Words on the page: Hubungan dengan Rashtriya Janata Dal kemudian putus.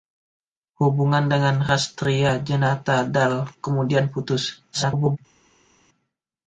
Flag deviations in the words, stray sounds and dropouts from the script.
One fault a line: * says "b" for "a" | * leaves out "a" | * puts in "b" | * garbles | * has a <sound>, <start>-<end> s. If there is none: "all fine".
* garbles